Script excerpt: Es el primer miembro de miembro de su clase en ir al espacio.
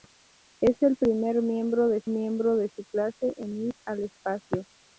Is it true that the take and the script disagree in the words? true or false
false